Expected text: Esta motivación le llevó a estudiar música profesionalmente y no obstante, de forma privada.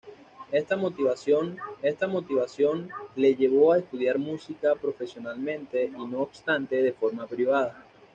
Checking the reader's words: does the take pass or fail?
fail